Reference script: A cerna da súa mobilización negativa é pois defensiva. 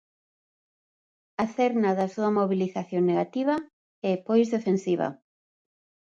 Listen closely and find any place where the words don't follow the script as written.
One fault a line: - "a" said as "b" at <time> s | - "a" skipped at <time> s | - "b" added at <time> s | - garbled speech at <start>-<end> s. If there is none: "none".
none